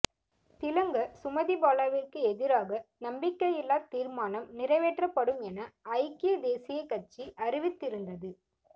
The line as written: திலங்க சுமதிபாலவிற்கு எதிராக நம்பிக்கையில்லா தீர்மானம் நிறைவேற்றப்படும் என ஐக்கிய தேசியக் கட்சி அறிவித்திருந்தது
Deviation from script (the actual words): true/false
false